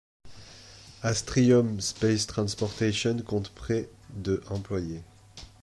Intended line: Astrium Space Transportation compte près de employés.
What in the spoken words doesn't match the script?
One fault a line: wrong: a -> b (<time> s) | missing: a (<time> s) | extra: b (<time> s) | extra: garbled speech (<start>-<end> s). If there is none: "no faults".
no faults